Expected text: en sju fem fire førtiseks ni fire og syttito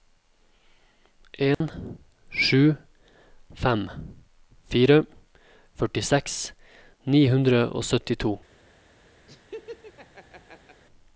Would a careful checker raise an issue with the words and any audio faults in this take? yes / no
yes